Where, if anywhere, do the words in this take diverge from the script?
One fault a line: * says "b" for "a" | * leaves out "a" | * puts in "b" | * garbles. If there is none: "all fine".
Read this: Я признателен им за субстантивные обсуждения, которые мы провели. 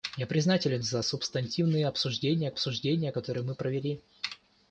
* leaves out "им"
* puts in "обсуждения"